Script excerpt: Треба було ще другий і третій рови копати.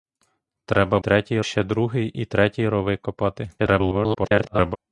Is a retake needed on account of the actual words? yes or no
yes